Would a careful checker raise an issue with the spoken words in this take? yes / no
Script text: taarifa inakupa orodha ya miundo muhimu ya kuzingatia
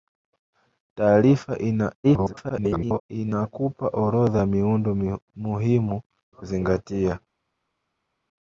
yes